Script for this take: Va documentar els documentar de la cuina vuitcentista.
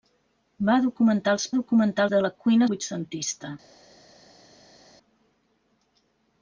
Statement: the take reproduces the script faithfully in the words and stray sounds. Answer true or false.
true